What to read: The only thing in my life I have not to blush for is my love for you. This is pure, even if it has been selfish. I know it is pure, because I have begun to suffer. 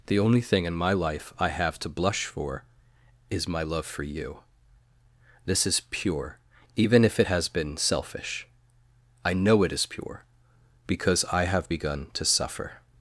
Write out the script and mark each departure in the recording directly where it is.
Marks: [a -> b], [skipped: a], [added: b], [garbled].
The only thing in my life I have [skipped: not] to blush for is my love for you. This is pure, even if it has been selfish. I know it is pure, because I have begun to suffer.